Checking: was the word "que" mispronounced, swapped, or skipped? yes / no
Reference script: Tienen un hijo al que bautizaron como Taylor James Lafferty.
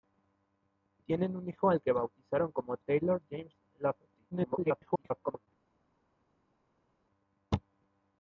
no